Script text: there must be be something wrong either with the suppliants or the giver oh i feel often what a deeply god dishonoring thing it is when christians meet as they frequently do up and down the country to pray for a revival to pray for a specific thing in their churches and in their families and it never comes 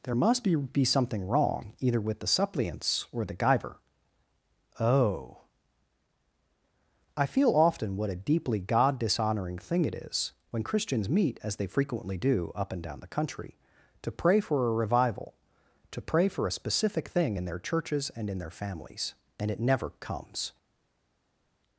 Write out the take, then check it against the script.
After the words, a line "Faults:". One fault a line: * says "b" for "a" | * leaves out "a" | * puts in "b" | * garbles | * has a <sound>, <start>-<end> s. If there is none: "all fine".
there must be be something wrong either with the suppliants or the giver oh i feel often what a deeply god dishonoring thing it is when christians meet as they frequently do up and down the country to pray for a revival to pray for a specific thing in their churches and in their families and it never comes
Faults:
all fine